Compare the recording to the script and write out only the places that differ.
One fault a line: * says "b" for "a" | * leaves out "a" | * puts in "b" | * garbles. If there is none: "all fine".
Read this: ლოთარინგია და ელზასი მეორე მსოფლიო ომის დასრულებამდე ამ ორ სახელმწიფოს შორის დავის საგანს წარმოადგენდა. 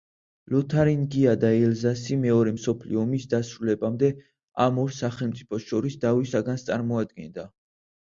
all fine